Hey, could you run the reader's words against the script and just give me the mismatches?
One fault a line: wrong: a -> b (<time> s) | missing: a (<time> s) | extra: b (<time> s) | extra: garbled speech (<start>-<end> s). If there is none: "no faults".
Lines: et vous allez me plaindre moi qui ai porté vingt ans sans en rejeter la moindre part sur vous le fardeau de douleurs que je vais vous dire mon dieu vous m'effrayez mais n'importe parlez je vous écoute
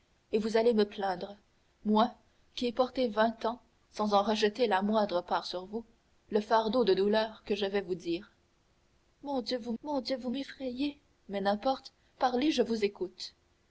extra: mon dieu vous (9.8 s)